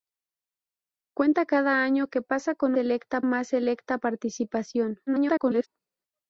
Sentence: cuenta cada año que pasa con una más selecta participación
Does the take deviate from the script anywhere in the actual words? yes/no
yes